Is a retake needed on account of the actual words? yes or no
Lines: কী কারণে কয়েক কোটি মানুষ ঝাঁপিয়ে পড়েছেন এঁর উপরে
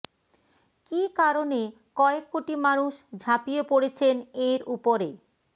no